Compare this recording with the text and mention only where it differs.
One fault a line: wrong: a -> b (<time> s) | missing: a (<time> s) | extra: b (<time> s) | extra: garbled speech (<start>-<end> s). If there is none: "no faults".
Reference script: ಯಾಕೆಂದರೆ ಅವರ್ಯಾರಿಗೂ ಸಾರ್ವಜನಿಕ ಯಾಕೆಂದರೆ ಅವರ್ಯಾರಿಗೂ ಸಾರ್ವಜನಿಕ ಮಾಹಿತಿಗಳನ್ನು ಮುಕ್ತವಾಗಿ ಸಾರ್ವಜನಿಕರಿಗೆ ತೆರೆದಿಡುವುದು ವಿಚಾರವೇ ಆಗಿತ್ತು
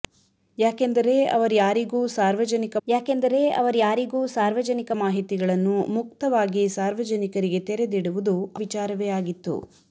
no faults